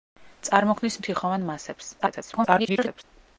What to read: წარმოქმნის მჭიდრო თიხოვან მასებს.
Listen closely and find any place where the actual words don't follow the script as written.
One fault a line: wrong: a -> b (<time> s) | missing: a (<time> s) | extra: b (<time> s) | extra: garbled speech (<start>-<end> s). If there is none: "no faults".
missing: მჭიდრო (1.0 s)
extra: garbled speech (2.0-3.0 s)